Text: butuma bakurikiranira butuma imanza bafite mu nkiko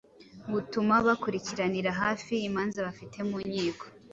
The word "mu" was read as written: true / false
true